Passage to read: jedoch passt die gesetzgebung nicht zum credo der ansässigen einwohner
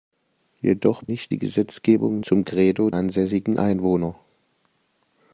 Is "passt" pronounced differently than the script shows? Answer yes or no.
yes